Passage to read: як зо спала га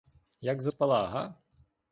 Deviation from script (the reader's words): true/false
false